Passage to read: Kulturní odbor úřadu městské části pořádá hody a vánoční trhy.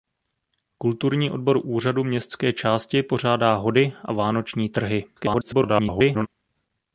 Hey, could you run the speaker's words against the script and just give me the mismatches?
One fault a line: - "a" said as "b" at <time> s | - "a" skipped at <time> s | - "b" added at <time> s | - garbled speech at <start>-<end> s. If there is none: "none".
- garbled speech at 5.2-6.3 s